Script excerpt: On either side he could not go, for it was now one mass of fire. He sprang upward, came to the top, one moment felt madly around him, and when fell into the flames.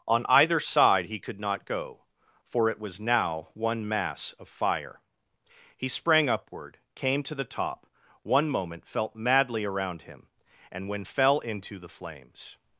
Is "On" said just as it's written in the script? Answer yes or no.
yes